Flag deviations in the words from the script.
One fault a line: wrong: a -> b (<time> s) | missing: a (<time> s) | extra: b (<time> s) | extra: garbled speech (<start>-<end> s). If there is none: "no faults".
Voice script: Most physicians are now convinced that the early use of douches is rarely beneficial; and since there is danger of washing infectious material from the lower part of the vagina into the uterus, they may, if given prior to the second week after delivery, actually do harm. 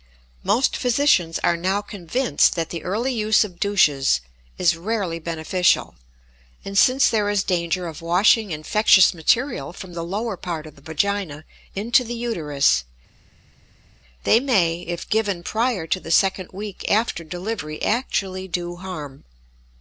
no faults